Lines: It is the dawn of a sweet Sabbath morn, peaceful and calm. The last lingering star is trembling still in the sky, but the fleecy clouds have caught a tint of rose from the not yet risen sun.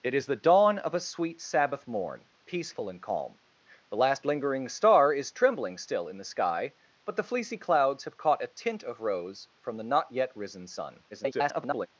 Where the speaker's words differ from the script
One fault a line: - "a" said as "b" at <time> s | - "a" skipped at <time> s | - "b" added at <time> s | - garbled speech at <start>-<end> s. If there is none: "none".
- garbled speech at 11.1-11.9 s